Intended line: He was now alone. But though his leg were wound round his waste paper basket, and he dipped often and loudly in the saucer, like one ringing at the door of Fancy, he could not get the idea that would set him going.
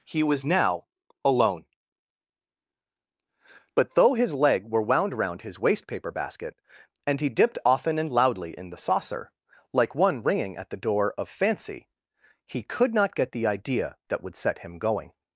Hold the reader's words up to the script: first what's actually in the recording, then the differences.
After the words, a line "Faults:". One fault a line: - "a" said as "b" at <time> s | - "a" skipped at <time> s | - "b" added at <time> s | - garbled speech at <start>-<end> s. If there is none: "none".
He was now alone. But though his leg were wound round his waste paper basket, and he dipped often and loudly in the saucer, like one ringing at the door of Fancy, he could not get the idea that would set him going.
Faults:
none